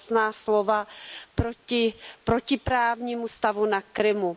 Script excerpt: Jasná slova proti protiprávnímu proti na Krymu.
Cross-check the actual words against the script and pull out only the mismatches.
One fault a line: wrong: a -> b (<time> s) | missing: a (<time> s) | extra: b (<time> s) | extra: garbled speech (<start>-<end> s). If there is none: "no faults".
wrong: proti -> stavu (3.3 s)